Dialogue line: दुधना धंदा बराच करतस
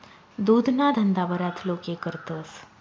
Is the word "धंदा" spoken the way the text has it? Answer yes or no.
yes